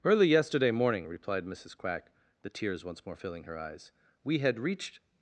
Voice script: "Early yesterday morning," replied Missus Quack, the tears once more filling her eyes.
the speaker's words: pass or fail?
fail